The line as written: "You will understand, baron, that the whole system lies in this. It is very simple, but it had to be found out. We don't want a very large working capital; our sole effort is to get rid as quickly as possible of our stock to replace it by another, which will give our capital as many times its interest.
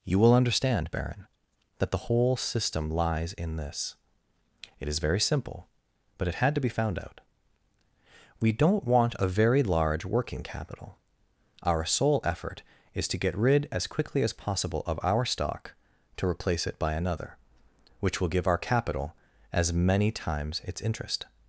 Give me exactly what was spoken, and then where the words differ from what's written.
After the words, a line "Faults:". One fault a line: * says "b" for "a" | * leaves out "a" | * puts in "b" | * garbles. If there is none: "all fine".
"You will understand, baron, that the whole system lies in this. It is very simple, but it had to be found out. We don't want a very large working capital; our sole effort is to get rid as quickly as possible of our stock to replace it by another, which will give our capital as many times its interest.
Faults:
all fine